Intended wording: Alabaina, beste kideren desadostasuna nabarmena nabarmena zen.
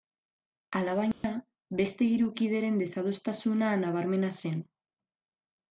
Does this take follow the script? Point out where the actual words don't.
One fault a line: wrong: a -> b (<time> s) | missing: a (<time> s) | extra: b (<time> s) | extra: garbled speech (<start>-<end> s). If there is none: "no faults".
extra: hiru (2.1 s)
missing: nabarmena (4.3 s)